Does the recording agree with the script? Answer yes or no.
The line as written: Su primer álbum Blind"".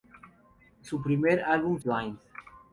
yes